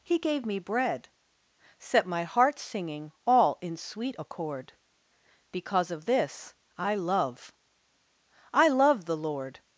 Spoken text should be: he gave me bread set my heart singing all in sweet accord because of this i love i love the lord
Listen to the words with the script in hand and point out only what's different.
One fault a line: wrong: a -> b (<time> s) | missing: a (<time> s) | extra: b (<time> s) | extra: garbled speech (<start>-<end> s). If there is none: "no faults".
no faults